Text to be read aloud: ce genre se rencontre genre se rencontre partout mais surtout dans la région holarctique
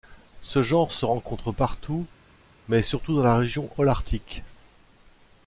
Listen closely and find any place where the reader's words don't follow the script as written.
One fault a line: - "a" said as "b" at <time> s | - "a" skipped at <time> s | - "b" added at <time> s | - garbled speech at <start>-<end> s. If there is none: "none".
- "genre se rencontre" skipped at 1.5 s